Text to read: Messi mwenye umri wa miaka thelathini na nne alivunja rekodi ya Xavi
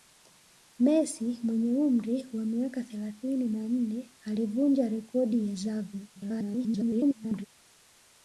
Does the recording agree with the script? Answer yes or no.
no